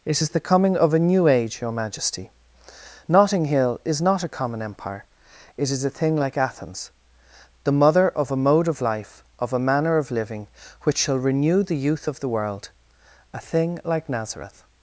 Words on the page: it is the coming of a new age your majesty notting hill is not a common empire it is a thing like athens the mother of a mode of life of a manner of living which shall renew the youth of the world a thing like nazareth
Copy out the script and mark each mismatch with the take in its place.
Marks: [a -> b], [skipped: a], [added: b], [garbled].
it is the coming of a new age your majesty notting hill is not a common empire it is a thing like athens the mother of a mode of life of a manner of living which shall renew the youth of the world a thing like nazareth